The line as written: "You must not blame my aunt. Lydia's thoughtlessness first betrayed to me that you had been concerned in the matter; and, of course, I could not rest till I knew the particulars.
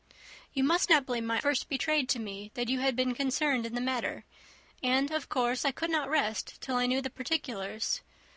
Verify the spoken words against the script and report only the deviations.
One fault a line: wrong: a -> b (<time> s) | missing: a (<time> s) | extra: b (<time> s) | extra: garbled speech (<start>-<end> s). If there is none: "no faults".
missing: aunt Lydia's thoughtlessness (1.4 s)